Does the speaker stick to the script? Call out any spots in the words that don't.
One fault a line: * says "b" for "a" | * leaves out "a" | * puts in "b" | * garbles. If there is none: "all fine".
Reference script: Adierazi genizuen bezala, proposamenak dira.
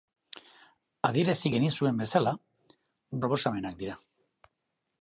all fine